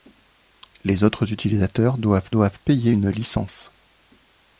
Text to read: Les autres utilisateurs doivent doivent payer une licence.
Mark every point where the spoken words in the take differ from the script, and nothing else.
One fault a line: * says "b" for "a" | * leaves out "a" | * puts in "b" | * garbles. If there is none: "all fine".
all fine